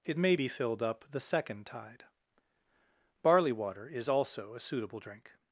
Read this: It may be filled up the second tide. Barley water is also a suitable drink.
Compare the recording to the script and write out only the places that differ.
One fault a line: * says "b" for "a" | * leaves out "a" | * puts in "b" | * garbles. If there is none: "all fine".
all fine